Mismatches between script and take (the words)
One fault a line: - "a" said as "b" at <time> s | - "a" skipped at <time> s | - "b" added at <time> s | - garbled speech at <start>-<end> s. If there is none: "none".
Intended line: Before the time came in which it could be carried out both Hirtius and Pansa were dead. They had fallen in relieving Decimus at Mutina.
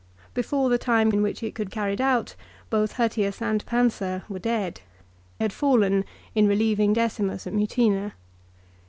- "came" skipped at 1.1 s
- "be" skipped at 1.7 s
- "They" skipped at 4.8 s